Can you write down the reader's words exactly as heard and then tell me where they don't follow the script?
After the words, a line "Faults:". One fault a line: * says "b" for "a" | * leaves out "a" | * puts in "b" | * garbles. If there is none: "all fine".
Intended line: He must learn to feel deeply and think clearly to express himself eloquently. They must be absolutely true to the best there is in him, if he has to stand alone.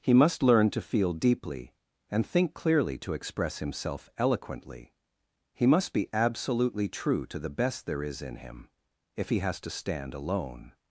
He must learn to feel deeply and think clearly to express himself eloquently. He must be absolutely true to the best there is in him, if he has to stand alone.
Faults:
* says "He" for "They"